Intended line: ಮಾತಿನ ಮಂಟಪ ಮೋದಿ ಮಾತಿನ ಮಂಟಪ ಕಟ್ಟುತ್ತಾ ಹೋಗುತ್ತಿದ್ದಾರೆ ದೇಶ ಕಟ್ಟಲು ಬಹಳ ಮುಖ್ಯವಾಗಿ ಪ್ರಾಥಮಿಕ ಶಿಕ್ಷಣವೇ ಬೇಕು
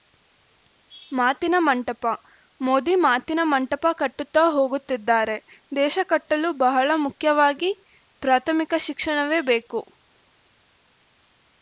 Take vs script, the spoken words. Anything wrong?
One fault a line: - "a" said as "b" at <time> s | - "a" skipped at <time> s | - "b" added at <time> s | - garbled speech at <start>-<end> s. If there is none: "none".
none